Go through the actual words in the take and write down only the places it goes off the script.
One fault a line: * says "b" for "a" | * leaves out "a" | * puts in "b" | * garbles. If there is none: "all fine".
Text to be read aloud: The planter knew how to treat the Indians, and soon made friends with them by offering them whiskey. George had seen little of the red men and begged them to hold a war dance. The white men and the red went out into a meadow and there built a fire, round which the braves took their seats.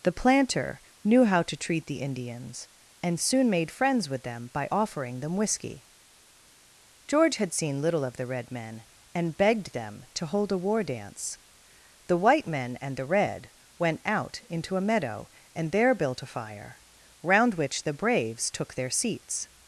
all fine